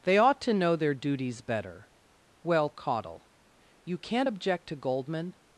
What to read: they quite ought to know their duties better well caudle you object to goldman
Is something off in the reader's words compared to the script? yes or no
yes